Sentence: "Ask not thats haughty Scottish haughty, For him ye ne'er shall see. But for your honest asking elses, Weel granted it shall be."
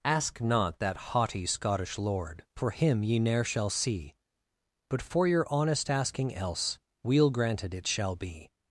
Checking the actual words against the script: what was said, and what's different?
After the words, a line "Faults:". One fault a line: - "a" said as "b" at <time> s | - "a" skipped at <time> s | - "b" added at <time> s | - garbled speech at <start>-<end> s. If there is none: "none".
"Ask not that haughty Scottish lord, For him ye ne'er shall see. But for your honest asking else, Weel granted it shall be."
Faults:
- "thats" said as "that" at 0.8 s
- "haughty" said as "lord" at 2.0 s
- "elses" said as "else" at 6.3 s